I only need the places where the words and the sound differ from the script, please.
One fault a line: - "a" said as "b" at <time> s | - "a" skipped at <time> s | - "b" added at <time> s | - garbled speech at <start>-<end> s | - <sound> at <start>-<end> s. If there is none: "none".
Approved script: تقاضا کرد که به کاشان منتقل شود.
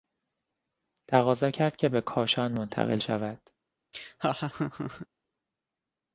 - laugh at 3.9-5.1 s